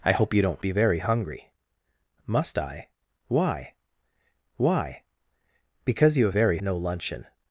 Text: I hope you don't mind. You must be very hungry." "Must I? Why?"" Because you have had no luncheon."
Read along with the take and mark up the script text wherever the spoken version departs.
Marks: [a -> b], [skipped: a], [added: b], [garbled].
I hope you don't [skipped: mind. You must] be very hungry." "Must I? Why?"" [added: why] Because you have [had -> very] no luncheon."